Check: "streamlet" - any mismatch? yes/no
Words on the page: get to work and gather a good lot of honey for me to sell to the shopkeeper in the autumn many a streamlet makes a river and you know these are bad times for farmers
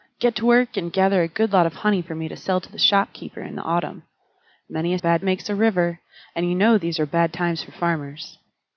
yes